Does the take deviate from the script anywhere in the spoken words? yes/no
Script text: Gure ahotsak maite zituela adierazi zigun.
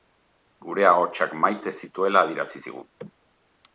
no